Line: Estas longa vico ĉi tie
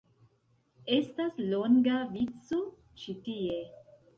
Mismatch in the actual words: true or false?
false